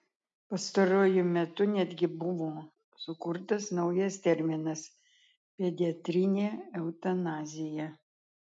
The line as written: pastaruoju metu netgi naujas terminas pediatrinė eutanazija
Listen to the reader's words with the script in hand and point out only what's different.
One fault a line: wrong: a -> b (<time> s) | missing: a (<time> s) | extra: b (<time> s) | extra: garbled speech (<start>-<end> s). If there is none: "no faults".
extra: buvo sukurtas (2.2 s)